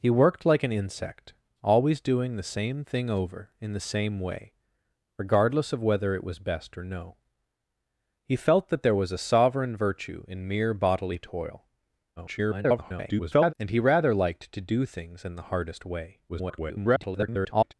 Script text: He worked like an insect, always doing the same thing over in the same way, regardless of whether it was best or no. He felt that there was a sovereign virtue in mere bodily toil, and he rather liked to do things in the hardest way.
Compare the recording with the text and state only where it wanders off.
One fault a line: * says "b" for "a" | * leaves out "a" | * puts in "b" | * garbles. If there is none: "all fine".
* garbles
* garbles